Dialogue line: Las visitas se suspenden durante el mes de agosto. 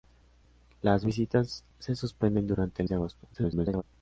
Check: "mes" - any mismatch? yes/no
yes